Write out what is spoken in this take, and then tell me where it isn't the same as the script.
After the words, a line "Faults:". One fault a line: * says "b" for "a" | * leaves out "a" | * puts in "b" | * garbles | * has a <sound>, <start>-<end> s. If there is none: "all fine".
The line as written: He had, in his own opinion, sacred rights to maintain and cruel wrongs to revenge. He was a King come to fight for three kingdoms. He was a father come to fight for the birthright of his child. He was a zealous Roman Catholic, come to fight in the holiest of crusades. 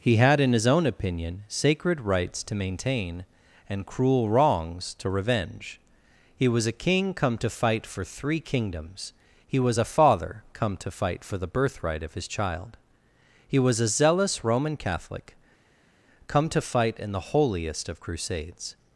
He had, in his own opinion, sacred rights to maintain and cruel wrongs to revenge. He was a King come to fight for three kingdoms. He was a father come to fight for the birthright of his child. He was a zealous Roman Catholic, come to fight in the holiest of crusades.
Faults:
all fine